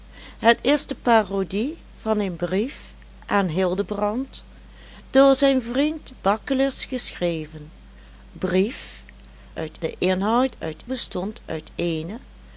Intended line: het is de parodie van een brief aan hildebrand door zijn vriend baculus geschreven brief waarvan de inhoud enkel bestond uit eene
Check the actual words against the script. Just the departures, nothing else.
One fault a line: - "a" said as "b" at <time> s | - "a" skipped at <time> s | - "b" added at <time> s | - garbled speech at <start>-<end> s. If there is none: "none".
- "waarvan" said as "uit" at 9.5 s
- "enkel" said as "uit" at 10.6 s